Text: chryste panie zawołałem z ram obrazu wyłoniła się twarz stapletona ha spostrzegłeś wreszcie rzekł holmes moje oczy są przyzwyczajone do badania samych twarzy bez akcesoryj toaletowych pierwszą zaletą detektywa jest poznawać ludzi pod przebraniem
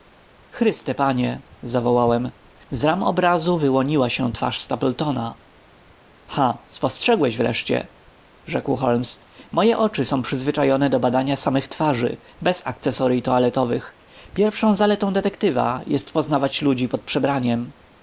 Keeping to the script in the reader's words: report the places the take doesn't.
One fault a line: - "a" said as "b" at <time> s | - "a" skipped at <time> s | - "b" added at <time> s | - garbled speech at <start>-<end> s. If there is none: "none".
none